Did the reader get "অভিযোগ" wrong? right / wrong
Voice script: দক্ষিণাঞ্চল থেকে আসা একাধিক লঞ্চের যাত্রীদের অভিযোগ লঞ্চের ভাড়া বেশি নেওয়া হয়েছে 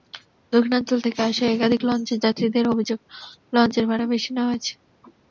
right